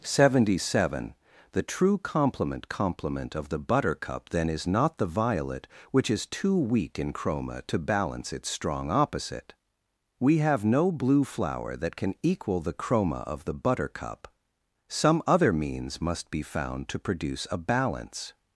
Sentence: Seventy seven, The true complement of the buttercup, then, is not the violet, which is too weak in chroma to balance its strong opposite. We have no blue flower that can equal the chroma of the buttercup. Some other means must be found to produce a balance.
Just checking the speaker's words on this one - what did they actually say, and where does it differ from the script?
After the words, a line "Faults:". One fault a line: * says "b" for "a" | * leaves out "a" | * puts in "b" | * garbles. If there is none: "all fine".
Seventy seven, The true complement complement of the buttercup, then, is not the violet, which is too weak in chroma to balance its strong opposite. We have no blue flower that can equal the chroma of the buttercup. Some other means must be found to produce a balance.
Faults:
* puts in "complement"